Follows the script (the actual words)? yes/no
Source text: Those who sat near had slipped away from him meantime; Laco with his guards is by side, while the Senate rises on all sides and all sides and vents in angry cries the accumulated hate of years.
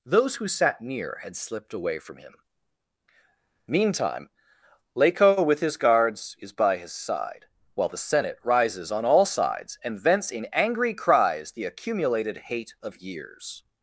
no